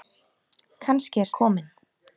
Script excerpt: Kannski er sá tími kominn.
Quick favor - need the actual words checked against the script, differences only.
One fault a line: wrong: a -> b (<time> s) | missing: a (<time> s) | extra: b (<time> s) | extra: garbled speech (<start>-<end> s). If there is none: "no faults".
missing: sá tími (1.3 s)